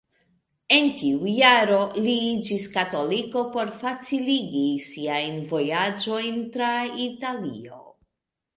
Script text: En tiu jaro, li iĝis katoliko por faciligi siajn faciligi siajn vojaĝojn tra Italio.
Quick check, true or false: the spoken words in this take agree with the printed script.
false